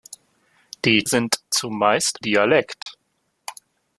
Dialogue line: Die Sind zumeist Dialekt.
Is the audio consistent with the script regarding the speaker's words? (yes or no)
yes